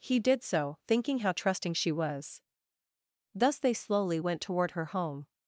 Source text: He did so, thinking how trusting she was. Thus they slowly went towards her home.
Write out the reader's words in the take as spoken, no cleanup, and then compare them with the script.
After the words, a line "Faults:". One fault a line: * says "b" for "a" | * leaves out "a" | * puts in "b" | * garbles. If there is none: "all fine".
He did so, thinking how trusting she was. Thus they slowly went toward her home.
Faults:
* says "toward" for "towards"